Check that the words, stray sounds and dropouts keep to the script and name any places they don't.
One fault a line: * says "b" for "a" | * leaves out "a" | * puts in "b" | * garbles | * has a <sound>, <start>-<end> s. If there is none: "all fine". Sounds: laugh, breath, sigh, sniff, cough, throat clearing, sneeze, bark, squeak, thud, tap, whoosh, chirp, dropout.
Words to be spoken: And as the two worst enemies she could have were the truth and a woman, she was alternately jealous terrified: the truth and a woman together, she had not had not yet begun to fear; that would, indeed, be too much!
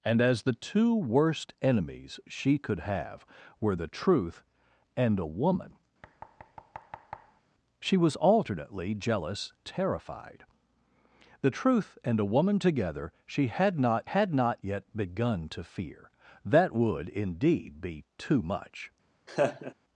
* has a thud, 6.0-7.4 s
* has a laugh, 19.3-19.7 s